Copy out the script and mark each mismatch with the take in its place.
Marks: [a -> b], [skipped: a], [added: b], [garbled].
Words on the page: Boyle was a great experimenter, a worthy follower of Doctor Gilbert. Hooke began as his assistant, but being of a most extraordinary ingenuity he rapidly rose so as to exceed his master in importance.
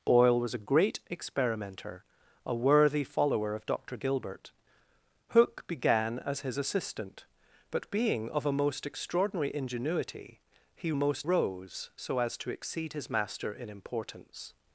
Boyle was a great experimenter, a worthy follower of Doctor Gilbert. Hooke began as his assistant, but being of a most extraordinary ingenuity he [rapidly -> most] rose so as to exceed his master in importance.